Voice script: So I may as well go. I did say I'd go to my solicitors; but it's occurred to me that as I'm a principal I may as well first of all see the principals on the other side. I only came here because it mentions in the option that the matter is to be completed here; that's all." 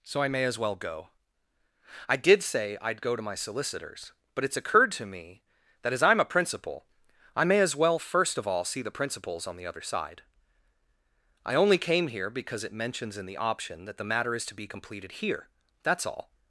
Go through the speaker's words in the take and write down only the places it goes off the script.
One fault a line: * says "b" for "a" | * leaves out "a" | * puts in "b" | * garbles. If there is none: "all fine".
all fine